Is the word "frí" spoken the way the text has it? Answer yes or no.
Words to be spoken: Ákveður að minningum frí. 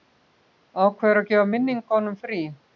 yes